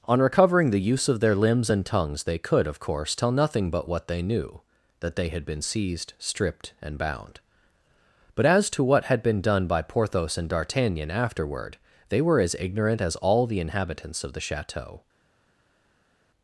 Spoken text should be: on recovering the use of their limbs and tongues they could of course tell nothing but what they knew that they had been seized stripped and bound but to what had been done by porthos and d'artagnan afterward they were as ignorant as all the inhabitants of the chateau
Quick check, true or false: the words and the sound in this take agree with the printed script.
false